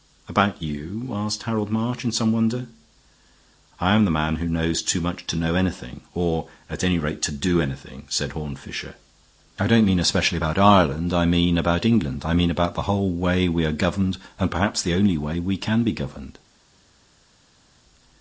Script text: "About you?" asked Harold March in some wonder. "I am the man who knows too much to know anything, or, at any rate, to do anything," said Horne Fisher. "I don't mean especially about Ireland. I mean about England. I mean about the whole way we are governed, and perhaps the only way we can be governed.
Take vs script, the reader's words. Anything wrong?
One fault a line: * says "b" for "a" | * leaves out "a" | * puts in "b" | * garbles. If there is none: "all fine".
all fine